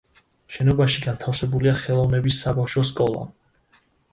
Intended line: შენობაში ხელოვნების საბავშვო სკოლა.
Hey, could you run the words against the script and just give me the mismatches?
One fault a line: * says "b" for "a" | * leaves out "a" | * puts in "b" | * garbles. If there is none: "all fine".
* puts in "განთავსებულია"